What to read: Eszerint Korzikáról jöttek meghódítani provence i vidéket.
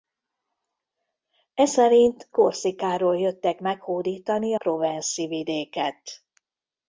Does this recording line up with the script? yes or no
yes